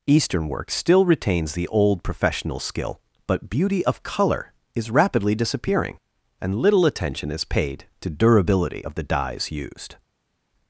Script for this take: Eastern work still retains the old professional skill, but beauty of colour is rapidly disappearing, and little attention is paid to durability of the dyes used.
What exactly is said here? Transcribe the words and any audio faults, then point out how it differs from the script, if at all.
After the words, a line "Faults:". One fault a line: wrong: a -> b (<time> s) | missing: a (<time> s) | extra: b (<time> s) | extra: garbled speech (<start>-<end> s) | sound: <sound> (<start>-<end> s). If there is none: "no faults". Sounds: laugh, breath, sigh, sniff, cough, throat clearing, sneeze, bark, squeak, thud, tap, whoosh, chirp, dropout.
Eastern work still retains the old professional skill, but beauty of colour is rapidly disappearing, and little attention is paid to durability of the dyes used.
Faults:
no faults